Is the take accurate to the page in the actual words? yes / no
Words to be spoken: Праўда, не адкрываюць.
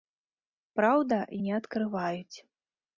yes